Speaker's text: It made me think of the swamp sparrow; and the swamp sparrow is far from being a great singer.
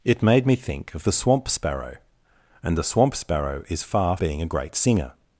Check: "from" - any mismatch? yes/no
yes